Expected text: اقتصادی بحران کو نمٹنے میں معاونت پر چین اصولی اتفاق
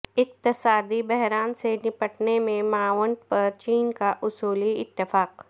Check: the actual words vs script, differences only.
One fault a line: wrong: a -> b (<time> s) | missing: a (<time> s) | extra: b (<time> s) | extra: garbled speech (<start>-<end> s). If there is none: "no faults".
wrong: کو -> سے (1.5 s)
extra: کا (3.9 s)